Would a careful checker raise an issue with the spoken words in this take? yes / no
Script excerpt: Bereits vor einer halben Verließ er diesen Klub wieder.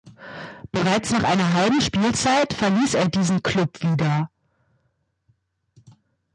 yes